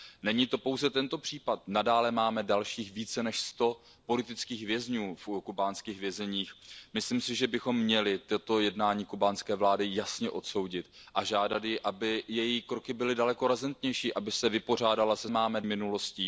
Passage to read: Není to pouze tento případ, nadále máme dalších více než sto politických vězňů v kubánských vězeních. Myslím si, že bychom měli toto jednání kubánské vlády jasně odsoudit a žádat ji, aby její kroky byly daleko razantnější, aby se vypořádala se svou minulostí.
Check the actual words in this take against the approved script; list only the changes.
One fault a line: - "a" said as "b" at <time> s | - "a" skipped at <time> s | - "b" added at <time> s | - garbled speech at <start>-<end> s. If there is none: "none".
- "svou" said as "máme" at 15.3 s